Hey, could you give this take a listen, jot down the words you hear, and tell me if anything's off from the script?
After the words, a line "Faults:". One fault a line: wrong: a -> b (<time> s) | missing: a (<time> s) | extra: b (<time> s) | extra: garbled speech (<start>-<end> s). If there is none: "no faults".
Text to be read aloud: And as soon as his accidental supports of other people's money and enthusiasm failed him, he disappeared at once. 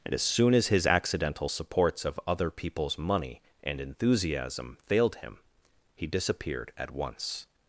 And as soon as his accidental supports of other people's money and enthusiasm failed him, he disappeared at once.
Faults:
no faults